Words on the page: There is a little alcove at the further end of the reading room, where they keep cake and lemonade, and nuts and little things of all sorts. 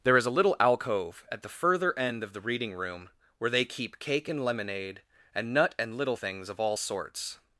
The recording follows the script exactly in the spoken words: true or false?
false